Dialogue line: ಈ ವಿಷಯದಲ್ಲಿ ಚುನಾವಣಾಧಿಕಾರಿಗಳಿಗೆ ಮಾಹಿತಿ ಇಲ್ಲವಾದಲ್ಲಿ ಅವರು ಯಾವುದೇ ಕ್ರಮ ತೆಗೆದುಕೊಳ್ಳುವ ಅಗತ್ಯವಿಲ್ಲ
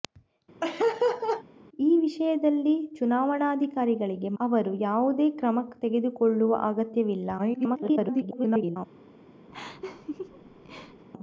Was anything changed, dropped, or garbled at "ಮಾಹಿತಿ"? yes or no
yes